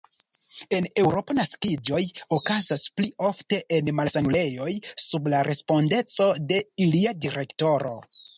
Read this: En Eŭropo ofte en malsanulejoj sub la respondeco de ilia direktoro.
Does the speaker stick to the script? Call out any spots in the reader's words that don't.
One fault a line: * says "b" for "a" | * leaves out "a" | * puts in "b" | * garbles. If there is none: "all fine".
* puts in "naskiĝoj okazas pli"